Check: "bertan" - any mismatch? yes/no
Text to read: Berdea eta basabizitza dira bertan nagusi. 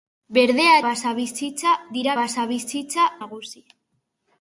yes